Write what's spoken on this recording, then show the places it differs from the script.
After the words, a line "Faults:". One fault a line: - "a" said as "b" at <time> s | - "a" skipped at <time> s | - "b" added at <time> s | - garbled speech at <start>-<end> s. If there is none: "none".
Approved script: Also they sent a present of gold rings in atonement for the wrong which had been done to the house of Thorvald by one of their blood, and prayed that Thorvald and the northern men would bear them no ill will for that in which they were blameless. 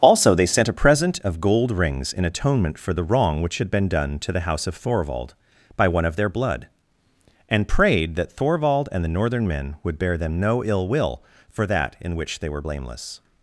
Also they sent a present of gold rings in atonement for the wrong which had been done to the house of Thorvald by one of their blood, and prayed that Thorvald and the northern men would bear them no ill will for that in which they were blameless.
Faults:
none